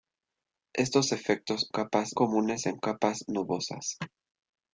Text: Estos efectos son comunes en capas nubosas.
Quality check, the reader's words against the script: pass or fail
fail